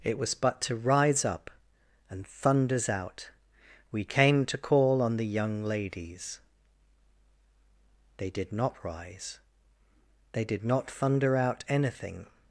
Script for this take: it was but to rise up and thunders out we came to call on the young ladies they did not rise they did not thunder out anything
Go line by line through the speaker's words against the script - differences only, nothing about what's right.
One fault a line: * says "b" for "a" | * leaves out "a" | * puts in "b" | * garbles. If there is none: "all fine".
all fine